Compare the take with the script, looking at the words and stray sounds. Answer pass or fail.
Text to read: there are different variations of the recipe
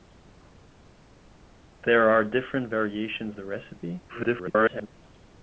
fail